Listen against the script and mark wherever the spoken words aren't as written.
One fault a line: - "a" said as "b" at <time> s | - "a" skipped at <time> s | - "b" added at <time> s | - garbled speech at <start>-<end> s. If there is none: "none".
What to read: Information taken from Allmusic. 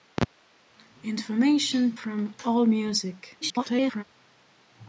- "taken" skipped at 2.0 s
- garbled speech at 3.4-4.0 s